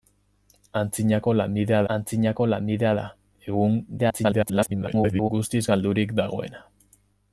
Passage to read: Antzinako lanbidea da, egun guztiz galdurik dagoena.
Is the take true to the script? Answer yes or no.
no